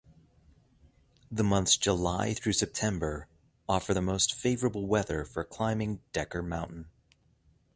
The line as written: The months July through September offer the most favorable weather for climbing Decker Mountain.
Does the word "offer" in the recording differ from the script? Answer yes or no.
no